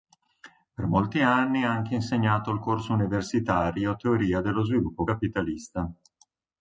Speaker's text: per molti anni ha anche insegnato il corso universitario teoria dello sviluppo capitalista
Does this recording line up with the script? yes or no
yes